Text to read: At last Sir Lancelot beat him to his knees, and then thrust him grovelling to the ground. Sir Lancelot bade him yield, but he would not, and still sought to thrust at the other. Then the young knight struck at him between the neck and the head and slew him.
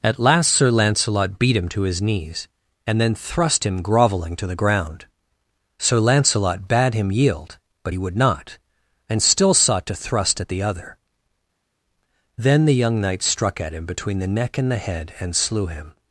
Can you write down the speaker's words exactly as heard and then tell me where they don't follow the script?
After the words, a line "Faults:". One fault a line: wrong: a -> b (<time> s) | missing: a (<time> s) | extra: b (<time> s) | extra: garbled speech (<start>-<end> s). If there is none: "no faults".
At last Sir Lancelot beat him to his knees, and then thrust him grovelling to the ground. Sir Lancelot bade him yield, but he would not, and still sought to thrust at the other. Then the young knight struck at him between the neck and the head and slew him.
Faults:
no faults